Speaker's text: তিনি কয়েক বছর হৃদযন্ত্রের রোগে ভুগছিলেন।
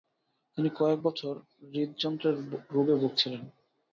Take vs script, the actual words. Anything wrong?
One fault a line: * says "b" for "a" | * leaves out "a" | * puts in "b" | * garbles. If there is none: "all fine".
all fine